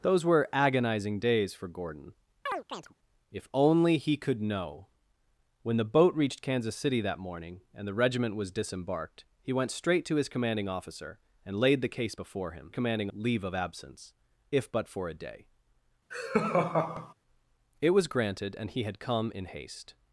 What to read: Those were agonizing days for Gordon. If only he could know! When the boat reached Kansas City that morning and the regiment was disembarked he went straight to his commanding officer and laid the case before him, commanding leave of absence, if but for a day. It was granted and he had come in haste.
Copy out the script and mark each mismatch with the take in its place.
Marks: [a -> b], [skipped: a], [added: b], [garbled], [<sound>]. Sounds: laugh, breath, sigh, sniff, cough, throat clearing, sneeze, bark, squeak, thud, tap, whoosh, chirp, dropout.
Those were agonizing days for Gordon. [chirp] If only he could know! When the boat reached Kansas City that morning and the regiment was disembarked he went straight to his commanding officer and laid the case before him, commanding leave of absence, if but for a day. [laugh] It was granted and he had come in haste.